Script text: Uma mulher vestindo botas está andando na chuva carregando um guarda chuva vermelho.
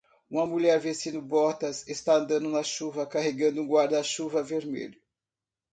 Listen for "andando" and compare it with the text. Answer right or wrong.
right